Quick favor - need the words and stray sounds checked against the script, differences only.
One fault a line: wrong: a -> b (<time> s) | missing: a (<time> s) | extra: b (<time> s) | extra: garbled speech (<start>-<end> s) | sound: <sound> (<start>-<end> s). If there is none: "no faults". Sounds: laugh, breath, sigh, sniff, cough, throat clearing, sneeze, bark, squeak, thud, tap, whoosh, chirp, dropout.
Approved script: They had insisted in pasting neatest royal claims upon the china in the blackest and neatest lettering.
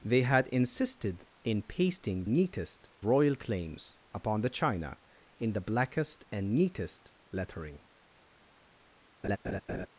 sound: laugh (9.2-9.9 s)